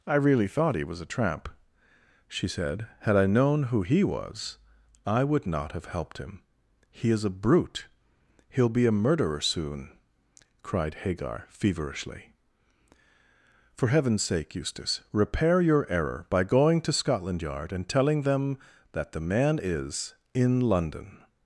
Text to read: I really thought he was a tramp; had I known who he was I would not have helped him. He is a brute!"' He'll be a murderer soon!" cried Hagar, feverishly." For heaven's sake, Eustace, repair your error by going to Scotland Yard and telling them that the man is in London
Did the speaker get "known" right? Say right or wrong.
right